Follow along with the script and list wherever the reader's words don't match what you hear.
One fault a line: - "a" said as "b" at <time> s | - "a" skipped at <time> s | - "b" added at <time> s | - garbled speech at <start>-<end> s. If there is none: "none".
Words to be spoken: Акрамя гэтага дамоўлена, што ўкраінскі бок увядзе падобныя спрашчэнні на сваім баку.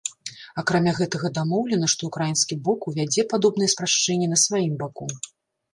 none